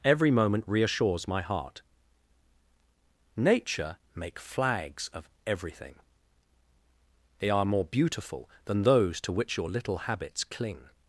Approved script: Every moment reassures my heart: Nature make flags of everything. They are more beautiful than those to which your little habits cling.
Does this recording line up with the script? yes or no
yes